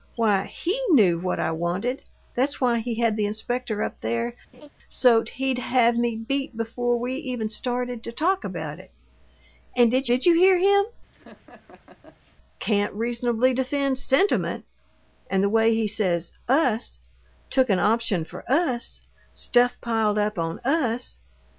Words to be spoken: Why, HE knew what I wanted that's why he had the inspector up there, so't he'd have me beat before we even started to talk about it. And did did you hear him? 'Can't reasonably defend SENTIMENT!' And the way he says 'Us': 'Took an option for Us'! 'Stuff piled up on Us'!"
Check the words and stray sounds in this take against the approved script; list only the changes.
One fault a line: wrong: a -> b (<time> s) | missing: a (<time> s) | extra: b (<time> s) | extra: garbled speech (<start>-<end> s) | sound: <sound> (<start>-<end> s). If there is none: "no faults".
sound: laugh (4.5-4.7 s)
sound: laugh (11.1-12.4 s)